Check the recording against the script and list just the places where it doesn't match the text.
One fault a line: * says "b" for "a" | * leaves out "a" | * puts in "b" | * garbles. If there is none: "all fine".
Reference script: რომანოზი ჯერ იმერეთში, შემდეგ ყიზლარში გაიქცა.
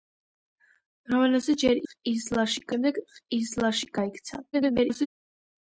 * says "ყიზლარში" for "იმერეთში"
* garbles